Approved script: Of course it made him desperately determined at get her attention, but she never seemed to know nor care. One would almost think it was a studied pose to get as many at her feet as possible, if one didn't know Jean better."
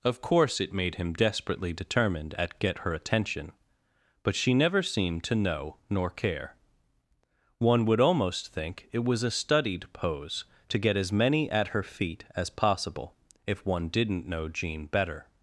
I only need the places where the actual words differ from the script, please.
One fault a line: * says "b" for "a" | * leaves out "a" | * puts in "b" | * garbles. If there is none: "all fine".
all fine